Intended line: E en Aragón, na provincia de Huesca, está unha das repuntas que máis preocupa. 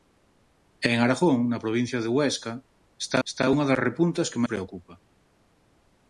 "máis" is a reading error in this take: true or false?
true